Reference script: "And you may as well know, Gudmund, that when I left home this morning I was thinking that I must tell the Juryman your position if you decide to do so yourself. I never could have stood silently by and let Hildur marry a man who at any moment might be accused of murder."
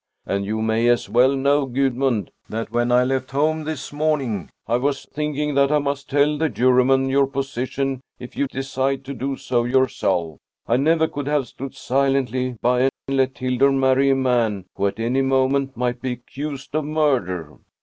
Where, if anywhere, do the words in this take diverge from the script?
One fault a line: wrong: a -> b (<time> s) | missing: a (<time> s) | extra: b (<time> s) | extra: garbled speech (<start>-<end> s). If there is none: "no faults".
no faults